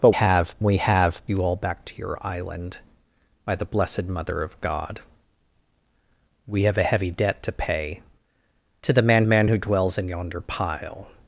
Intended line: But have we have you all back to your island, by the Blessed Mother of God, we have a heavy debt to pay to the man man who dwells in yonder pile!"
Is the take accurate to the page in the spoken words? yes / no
yes